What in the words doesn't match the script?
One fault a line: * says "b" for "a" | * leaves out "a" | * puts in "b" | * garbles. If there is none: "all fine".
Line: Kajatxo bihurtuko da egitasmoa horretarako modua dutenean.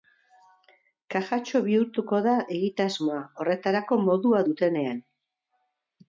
all fine